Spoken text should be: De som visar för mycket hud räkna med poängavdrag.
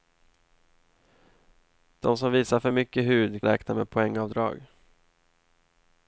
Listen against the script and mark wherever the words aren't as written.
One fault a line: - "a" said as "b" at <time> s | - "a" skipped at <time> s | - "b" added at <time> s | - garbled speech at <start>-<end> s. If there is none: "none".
none